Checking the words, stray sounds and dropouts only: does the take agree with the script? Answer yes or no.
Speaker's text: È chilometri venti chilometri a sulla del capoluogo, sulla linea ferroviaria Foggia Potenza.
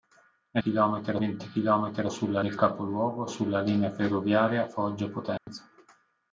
no